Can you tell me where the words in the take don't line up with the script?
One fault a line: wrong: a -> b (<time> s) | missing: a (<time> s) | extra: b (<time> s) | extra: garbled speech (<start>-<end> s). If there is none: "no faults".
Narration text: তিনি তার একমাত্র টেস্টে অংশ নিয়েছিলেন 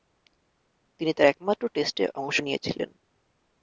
no faults